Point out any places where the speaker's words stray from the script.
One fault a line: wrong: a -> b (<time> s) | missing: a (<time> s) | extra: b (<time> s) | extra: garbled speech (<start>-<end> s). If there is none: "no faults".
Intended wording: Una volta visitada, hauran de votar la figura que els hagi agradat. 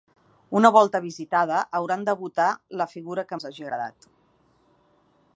no faults